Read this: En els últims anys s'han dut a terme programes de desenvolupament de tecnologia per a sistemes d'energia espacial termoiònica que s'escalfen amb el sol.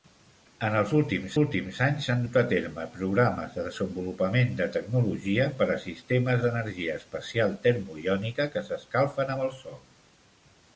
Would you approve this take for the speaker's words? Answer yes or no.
no